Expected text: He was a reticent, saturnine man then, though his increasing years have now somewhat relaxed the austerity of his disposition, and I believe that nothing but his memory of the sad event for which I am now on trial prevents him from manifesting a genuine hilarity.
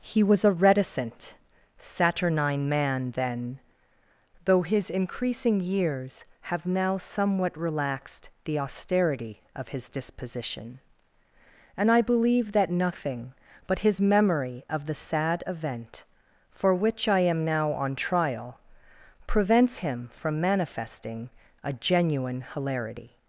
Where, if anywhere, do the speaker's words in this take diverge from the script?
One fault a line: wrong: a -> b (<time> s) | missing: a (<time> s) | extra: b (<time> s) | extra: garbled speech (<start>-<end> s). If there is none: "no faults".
no faults